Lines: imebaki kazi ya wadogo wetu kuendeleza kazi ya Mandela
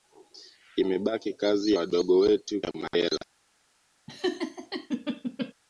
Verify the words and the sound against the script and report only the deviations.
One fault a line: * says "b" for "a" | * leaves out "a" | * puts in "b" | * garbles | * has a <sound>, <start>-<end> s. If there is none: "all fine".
* leaves out "ya"
* leaves out "kuendeleza kazi"
* has a laugh, 4.1-5.5 s